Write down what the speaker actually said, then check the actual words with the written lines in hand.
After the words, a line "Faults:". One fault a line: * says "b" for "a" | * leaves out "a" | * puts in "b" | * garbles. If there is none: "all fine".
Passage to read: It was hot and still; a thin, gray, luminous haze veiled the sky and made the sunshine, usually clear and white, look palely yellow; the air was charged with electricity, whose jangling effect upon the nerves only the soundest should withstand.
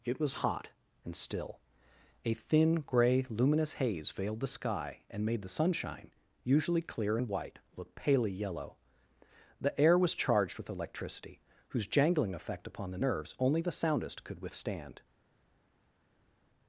It was hot and still; a thin, gray, luminous haze veiled the sky and made the sunshine, usually clear and white, look palely yellow; the air was charged with electricity, whose jangling effect upon the nerves only the soundest could withstand.
Faults:
* says "could" for "should"